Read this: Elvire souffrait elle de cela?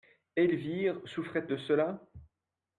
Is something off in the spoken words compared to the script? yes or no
yes